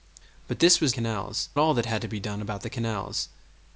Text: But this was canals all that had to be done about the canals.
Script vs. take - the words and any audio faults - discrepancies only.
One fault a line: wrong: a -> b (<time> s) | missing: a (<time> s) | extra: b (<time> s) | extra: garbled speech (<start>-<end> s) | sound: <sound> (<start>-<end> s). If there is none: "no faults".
no faults